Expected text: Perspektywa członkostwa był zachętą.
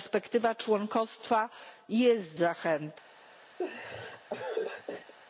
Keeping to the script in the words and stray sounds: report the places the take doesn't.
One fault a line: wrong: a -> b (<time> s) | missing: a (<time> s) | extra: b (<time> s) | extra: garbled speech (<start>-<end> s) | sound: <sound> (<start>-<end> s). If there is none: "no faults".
wrong: był -> jest (1.9 s)
sound: laugh (3.6-5.1 s)